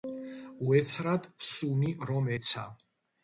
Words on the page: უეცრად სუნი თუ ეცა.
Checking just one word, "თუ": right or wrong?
wrong